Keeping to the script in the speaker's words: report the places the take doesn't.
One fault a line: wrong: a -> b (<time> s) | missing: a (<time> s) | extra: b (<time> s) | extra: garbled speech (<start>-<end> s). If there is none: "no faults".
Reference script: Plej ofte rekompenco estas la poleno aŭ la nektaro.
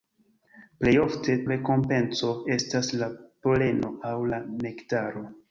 no faults